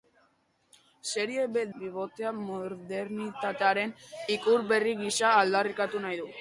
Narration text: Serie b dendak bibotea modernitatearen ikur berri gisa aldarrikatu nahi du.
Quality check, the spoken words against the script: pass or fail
fail